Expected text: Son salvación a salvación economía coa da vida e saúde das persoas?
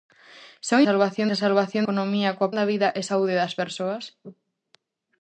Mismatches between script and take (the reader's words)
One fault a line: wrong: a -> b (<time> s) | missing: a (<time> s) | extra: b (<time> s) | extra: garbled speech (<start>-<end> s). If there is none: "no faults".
no faults